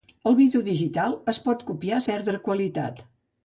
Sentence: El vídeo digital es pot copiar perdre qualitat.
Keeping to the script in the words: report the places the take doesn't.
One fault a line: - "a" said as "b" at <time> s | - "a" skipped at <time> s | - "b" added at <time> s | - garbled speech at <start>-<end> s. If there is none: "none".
none